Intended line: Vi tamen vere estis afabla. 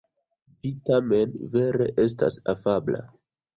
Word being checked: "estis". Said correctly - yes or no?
no